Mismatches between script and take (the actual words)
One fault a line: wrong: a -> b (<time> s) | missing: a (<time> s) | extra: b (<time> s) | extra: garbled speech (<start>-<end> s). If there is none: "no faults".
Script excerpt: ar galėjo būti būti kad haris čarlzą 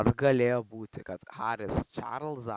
missing: būti (1.0 s)